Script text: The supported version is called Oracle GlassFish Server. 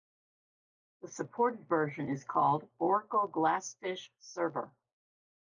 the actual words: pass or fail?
pass